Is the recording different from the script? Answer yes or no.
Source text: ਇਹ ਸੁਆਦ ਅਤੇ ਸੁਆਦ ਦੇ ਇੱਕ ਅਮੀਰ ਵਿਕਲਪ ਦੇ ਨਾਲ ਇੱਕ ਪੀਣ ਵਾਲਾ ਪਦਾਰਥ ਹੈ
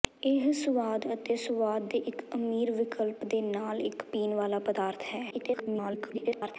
yes